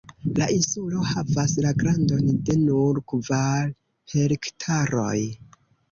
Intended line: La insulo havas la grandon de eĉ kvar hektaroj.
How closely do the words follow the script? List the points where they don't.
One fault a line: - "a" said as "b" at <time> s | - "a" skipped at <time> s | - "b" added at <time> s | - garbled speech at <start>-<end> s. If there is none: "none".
- "eĉ" said as "nur" at 2.6 s